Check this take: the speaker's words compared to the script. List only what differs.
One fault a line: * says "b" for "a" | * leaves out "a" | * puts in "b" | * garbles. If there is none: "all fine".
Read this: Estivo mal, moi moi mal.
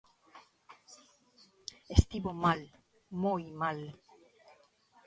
* leaves out "moi"